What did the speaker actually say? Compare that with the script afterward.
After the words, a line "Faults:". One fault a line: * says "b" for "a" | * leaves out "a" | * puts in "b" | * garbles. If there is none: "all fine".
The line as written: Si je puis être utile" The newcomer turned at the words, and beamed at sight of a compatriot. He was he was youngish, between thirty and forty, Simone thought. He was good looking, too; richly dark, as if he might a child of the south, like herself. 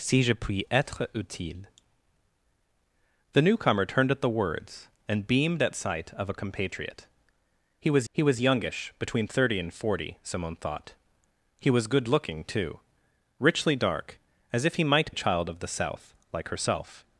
Si je puis être utile" The newcomer turned at the words, and beamed at sight of a compatriot. He was he was youngish, between thirty and forty, Simone thought. He was good looking, too; richly dark, as if he might a child of the south, like herself.
Faults:
all fine